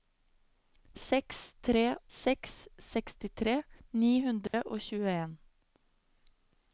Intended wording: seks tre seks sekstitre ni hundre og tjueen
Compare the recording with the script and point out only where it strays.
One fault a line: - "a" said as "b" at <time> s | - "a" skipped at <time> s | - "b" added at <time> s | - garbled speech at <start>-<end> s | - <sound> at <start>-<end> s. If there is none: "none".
- dropout at 4.5-4.5 s